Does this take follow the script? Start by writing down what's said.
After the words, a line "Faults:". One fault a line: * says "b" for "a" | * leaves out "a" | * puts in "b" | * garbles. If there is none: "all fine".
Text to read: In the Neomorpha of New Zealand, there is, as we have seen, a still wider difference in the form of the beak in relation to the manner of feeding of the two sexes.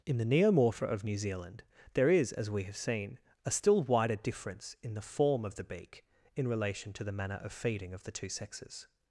In the Neomorpha of New Zealand, there is, as we have seen, a still wider difference in the form of the beak in relation to the manner of feeding of the two sexes.
Faults:
all fine